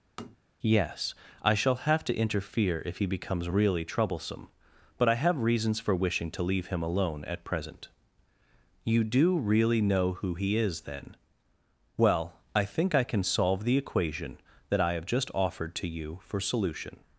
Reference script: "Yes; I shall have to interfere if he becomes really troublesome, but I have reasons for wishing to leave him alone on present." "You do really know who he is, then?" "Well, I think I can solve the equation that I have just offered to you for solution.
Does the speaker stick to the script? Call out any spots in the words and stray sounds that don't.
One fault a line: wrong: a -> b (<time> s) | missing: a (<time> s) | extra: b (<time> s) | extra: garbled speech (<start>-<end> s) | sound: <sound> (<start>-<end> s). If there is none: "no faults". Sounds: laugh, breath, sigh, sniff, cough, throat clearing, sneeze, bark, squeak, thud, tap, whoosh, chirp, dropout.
sound: tap (0.2-0.4 s)
wrong: on -> at (7.3 s)